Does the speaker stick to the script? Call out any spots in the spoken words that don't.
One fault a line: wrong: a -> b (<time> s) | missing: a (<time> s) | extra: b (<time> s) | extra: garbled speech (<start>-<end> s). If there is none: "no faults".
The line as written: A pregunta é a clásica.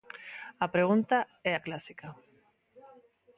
no faults